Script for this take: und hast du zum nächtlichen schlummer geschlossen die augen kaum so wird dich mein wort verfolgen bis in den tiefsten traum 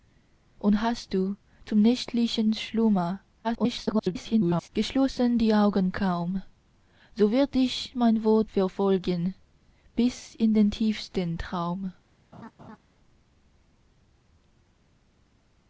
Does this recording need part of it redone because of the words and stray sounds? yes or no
yes